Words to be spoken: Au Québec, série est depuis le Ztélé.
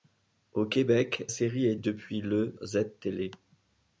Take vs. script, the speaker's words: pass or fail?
pass